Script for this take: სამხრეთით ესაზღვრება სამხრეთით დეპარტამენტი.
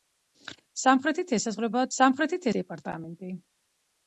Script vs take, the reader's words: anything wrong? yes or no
no